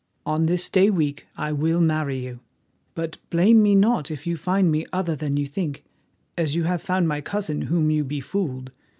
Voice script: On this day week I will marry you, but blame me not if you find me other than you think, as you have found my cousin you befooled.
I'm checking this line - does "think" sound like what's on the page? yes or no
yes